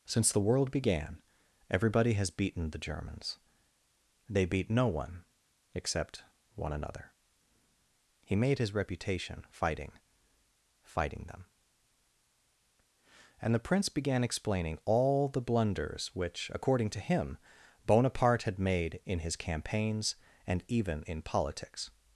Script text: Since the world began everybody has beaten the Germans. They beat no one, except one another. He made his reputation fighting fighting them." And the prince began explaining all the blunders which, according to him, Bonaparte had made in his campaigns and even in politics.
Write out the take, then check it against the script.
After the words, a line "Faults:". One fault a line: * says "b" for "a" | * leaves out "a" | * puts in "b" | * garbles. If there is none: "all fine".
Since the world began everybody has beaten the Germans. They beat no one, except one another. He made his reputation fighting fighting them." And the prince began explaining all the blunders which, according to him, Bonaparte had made in his campaigns and even in politics.
Faults:
all fine